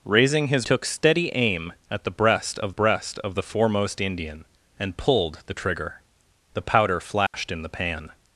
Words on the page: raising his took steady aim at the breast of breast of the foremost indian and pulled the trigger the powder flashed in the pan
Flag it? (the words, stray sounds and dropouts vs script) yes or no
yes